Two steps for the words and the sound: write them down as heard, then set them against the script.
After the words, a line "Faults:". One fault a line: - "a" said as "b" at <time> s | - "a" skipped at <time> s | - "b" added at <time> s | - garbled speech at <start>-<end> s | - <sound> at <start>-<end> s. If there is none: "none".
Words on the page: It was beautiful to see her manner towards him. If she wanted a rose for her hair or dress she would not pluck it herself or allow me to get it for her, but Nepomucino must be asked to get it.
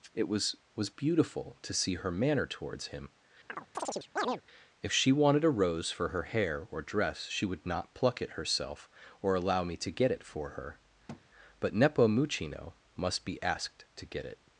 It was was beautiful to see her manner towards him. If she wanted a rose for her hair or dress she would not pluck it herself or allow me to get it for her, but Nepomucino must be asked to get it.
Faults:
- "was" added at 0.8 s
- chirp at 3.5-4.4 s
- thud at 11.1-11.2 s